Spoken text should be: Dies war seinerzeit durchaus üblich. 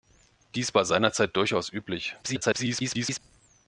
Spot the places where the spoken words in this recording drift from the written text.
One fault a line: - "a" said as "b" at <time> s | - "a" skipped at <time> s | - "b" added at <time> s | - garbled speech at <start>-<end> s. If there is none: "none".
- garbled speech at 2.2-3.2 s